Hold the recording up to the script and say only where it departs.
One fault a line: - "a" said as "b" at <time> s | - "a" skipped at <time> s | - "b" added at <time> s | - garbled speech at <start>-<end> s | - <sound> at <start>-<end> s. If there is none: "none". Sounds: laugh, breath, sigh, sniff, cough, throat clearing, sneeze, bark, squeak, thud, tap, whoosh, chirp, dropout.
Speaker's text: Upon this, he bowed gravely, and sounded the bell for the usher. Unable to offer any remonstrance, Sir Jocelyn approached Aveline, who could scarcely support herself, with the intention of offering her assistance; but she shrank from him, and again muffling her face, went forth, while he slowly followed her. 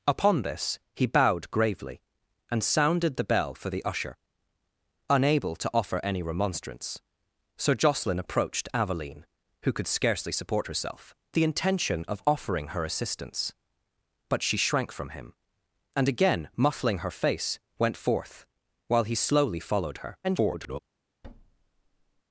- "with" skipped at 11.1 s
- garbled speech at 20.2-20.8 s
- thud at 21.2-22.2 s